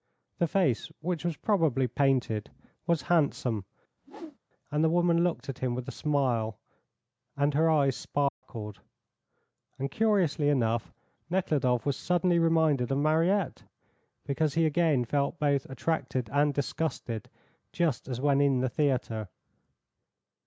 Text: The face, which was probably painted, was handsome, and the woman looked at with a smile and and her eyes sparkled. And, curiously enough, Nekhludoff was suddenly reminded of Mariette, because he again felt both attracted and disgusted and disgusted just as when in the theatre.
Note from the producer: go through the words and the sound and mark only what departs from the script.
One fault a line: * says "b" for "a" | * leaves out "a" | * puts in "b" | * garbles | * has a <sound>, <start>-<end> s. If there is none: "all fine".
* has a whoosh, 4.0-4.4 s
* puts in "him"
* leaves out "and"
* has a dropout, 8.3-8.4 s
* leaves out "and disgusted"